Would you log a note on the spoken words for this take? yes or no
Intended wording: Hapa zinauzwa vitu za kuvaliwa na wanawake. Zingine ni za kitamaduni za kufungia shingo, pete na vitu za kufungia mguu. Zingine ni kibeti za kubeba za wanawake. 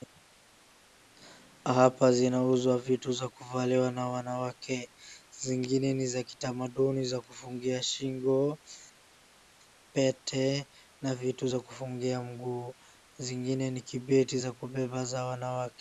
no